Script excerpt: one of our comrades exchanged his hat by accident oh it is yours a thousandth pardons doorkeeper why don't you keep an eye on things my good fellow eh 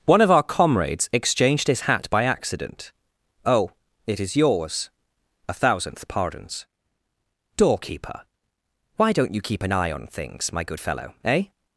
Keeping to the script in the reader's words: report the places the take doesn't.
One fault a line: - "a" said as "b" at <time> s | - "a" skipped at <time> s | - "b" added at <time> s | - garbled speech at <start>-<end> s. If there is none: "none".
none